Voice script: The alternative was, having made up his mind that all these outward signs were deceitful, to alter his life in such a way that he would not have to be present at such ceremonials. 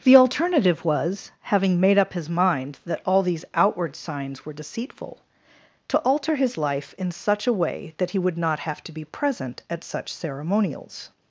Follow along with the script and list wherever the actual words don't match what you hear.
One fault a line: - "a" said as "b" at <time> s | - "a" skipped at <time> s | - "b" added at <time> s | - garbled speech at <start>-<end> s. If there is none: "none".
none